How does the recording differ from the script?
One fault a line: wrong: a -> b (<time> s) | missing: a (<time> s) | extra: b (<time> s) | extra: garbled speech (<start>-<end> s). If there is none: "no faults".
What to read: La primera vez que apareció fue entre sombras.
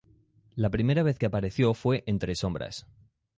no faults